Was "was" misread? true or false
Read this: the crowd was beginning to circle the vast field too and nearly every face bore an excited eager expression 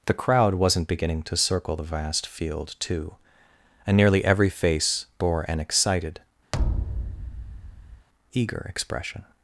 true